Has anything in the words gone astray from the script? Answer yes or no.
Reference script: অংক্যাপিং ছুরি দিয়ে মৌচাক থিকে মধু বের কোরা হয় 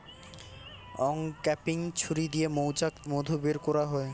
yes